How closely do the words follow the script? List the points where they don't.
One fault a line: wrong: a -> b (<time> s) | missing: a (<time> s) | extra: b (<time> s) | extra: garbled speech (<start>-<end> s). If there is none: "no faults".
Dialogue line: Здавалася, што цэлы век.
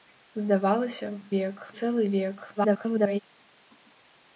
wrong: што -> век (1.3 s)
extra: garbled speech (2.6-3.2 s)